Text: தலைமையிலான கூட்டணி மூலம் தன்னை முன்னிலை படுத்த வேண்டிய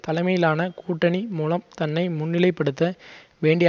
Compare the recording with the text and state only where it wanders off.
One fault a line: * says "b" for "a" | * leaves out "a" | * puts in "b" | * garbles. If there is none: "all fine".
all fine